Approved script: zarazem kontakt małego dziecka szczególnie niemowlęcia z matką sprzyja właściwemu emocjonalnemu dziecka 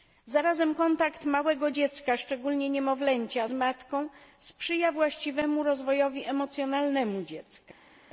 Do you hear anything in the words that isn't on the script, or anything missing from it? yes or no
yes